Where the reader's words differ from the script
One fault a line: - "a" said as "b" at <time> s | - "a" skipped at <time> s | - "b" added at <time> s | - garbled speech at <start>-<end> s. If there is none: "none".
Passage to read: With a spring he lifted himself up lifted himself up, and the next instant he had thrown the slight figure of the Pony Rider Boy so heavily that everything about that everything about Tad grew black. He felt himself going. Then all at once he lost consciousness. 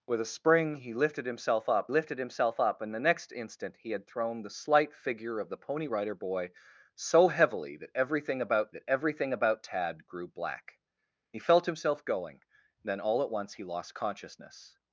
none